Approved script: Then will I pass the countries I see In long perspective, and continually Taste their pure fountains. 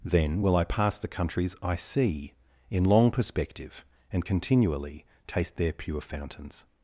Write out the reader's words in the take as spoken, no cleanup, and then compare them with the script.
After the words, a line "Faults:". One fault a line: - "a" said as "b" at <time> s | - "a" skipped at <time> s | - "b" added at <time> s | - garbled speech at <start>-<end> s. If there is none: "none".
Then will I pass the countries I see In long perspective, and continually Taste their pure fountains.
Faults:
none